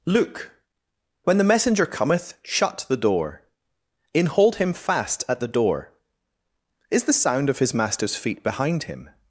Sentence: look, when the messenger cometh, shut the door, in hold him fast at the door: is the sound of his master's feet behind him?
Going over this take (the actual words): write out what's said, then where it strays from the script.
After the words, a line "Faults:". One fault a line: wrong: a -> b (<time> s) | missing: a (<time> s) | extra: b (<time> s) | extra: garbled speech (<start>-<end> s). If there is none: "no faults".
look, when the messenger cometh, shut the door, in hold him fast at the door: is the sound of his master's feet behind him?
Faults:
no faults